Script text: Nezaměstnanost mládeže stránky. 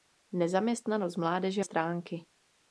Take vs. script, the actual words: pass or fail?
pass